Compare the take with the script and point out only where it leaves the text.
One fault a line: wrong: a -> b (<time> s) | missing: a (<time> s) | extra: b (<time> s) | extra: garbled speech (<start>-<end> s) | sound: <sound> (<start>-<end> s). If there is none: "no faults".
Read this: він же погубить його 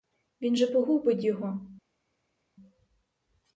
no faults